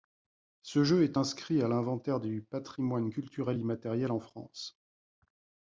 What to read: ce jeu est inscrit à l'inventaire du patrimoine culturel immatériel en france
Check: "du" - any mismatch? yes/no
no